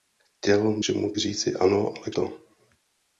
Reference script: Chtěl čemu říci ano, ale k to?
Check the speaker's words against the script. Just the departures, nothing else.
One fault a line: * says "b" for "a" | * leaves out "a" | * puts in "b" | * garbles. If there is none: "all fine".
all fine